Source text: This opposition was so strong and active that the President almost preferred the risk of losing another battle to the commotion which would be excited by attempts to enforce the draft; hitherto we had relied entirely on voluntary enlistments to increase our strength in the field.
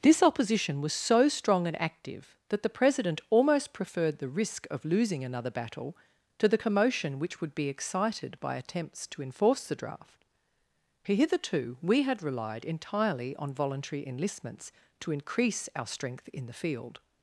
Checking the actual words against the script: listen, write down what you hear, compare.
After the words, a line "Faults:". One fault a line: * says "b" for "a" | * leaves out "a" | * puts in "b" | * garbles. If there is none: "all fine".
This opposition was so strong and active that the President almost preferred the risk of losing another battle to the commotion which would be excited by attempts to enforce the draft; hitherto we had relied entirely on voluntary enlistments to increase our strength in the field.
Faults:
all fine